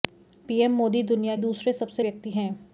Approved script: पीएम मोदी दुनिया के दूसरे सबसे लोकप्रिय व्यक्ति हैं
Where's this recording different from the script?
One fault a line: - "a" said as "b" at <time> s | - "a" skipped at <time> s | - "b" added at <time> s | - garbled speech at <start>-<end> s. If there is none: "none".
- "के" skipped at 1.4 s
- "लोकप्रिय" skipped at 2.0 s